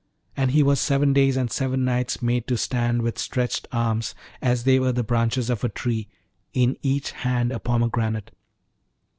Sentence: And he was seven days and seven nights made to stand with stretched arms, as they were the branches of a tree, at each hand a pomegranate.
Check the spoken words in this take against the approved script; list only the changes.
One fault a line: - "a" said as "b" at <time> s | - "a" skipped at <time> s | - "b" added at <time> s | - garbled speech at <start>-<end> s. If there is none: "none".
- "at" said as "in" at 6.5 s